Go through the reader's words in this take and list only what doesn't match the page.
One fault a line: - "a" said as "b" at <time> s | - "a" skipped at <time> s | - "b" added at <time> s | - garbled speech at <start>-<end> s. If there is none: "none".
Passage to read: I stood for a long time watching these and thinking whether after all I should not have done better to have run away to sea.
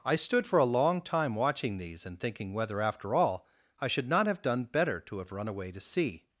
none